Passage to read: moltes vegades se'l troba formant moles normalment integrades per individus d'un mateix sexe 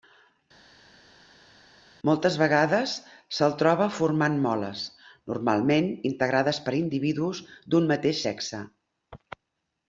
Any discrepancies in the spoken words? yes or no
no